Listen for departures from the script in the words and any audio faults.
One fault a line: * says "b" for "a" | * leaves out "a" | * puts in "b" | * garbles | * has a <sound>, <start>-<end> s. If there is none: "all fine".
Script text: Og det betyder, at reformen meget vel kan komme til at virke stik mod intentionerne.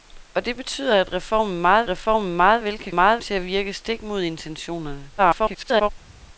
* puts in "reformen meget"
* says "meget" for "komme"
* garbles